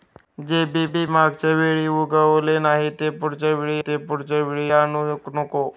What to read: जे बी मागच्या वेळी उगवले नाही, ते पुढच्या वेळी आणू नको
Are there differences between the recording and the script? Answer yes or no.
yes